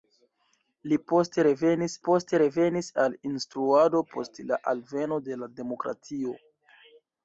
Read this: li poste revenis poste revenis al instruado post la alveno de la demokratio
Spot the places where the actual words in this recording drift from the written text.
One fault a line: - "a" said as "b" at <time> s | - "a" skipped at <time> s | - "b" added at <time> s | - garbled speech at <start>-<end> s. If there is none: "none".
none